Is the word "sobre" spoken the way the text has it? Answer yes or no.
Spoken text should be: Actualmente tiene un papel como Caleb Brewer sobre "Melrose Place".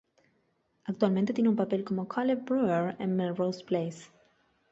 no